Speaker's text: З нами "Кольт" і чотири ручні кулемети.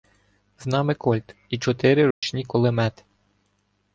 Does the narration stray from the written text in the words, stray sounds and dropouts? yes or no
yes